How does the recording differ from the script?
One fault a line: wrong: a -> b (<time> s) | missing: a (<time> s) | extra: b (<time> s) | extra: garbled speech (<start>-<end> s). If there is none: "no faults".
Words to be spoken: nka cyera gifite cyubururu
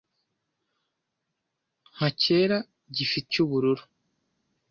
no faults